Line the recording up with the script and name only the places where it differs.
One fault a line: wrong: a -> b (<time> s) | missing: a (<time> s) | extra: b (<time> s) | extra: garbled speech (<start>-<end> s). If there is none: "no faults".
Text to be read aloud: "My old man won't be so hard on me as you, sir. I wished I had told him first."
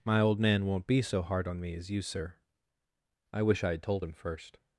wrong: wished -> wish (3.4 s)